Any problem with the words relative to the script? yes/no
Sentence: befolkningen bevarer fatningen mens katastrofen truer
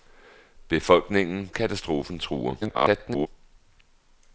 yes